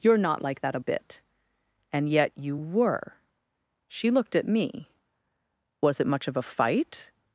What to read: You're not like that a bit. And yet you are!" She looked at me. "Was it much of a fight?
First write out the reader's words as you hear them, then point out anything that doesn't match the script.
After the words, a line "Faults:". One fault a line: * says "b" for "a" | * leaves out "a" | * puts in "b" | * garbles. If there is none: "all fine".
You're not like that a bit. And yet you were!" She looked at me. "Was it much of a fight?
Faults:
* says "were" for "are"